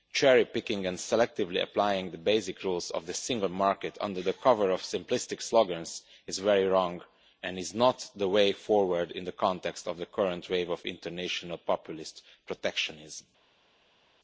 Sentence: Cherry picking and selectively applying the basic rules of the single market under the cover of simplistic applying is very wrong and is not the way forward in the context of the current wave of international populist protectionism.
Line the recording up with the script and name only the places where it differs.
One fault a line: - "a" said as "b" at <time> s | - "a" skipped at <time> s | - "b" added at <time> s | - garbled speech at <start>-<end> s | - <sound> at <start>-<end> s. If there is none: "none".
- "applying" said as "slogans" at 5.4 s